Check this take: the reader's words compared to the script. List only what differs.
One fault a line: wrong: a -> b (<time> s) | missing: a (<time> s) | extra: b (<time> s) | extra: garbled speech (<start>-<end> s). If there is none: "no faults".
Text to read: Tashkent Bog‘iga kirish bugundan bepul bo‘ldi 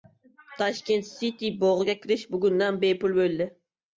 extra: City (1.1 s)